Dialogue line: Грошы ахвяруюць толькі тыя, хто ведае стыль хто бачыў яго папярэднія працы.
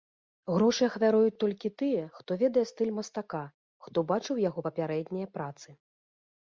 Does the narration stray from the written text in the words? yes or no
yes